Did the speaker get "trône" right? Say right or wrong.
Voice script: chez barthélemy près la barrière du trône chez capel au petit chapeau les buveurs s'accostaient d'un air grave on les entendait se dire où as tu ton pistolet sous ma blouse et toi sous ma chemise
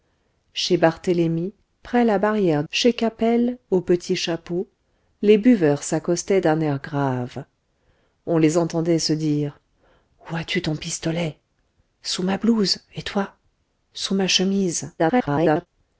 wrong